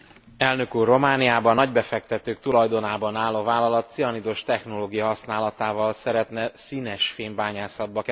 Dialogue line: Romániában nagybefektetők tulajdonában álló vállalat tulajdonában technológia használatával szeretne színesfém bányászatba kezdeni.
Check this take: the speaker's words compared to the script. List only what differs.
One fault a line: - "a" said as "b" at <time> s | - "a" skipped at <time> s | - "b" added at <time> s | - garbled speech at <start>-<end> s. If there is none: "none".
- "tulajdonában" said as "cianidos" at 3.9 s